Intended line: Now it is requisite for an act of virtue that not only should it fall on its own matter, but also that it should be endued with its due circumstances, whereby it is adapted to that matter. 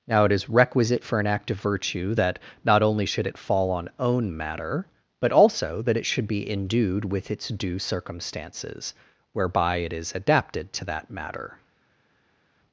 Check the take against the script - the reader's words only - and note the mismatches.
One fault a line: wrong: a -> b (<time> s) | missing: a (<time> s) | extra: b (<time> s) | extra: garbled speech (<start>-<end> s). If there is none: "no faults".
missing: its (3.9 s)